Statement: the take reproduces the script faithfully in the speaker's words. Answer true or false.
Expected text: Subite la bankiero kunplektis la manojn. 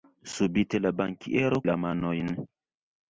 false